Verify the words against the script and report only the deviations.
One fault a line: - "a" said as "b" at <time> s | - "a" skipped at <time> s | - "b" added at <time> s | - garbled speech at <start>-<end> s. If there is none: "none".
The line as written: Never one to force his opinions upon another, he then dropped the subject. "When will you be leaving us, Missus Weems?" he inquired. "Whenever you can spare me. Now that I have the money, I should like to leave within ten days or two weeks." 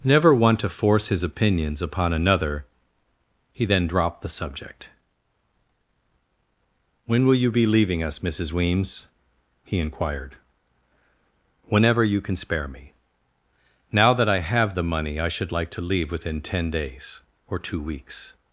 none